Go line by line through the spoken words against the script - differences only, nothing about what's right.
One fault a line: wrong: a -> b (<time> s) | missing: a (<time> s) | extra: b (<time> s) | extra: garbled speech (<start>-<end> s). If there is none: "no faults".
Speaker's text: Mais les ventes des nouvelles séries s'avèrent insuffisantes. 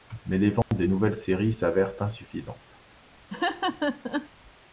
no faults